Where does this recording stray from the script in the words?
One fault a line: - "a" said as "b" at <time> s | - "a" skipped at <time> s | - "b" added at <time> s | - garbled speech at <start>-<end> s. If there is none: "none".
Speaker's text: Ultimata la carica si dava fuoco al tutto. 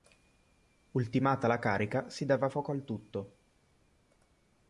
none